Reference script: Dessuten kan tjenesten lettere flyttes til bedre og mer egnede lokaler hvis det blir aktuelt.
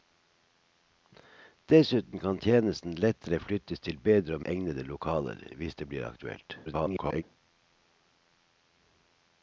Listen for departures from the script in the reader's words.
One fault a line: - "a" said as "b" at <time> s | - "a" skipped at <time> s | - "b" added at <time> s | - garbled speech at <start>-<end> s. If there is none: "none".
- "mer" skipped at 4.4 s
- garbled speech at 6.7-7.2 s